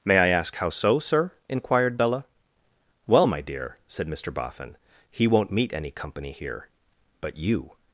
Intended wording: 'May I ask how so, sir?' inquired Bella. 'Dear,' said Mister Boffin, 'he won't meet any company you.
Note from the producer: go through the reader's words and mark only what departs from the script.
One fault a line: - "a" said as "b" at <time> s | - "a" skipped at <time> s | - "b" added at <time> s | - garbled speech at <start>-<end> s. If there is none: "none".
- "Well my" added at 3.1 s
- "here but" added at 6.3 s